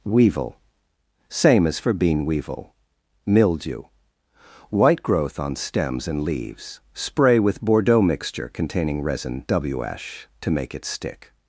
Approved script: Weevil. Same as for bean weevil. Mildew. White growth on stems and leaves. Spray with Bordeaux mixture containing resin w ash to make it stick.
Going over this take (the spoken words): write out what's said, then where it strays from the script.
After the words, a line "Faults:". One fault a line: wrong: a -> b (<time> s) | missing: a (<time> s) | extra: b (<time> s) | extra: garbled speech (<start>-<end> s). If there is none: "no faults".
Weevil. Same as for bean weevil. Mildew. White growth on stems and leaves. Spray with Bordeaux mixture containing resin w ash to make it stick.
Faults:
no faults